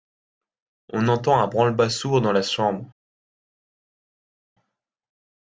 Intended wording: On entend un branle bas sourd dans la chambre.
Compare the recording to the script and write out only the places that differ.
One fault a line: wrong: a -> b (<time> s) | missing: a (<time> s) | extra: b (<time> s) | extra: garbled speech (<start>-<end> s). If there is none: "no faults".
no faults